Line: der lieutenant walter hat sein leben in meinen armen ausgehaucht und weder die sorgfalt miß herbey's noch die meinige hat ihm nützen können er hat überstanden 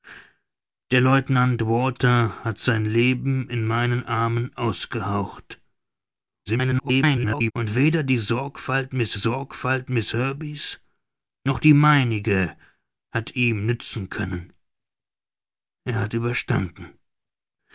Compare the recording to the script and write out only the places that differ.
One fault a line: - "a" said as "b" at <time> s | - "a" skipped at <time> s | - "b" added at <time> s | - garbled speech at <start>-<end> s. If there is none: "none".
- garbled speech at 6.5-7.5 s
- "sorgfalt miß" added at 9.1 s